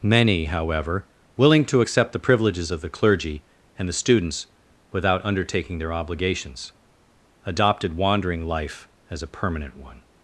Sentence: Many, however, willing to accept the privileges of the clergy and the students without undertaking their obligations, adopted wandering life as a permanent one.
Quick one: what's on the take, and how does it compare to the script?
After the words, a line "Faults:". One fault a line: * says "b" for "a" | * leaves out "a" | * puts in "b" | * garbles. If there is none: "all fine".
Many, however, willing to accept the privileges of the clergy and the students without undertaking their obligations, adopted wandering life as a permanent one.
Faults:
all fine